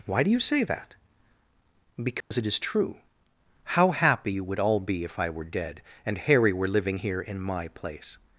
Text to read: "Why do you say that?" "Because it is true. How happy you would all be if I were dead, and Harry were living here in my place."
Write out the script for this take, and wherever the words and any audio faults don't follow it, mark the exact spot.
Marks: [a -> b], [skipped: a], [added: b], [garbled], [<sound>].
"Why do you say that?" "Because [dropout] it is true. How happy you would all be if I were dead, and Harry were living here in my place."